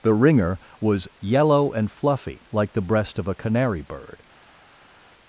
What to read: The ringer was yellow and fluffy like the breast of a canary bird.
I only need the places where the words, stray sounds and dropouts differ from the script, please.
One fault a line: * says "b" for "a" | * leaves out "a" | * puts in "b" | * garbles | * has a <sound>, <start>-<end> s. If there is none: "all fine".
all fine